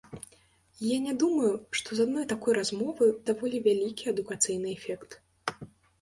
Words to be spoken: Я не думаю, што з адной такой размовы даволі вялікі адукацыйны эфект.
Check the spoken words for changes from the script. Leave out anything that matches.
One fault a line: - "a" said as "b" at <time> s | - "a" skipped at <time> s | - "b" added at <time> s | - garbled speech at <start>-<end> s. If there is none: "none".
none